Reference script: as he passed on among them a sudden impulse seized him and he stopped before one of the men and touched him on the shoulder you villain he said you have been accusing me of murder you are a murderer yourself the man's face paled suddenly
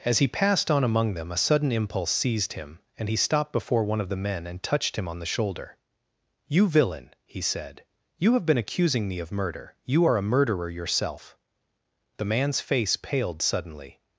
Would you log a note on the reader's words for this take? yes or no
no